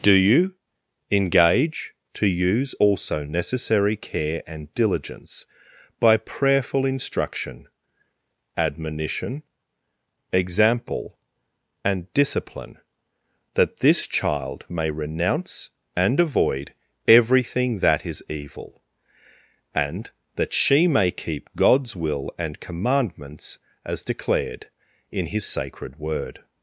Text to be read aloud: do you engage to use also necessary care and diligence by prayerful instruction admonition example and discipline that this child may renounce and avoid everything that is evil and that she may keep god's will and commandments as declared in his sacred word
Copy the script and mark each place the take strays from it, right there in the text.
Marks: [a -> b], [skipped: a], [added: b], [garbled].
do you engage to use also necessary care and diligence by prayerful instruction admonition example and discipline that this child may renounce and avoid everything that is evil and that she may keep god's will and commandments as declared in his sacred word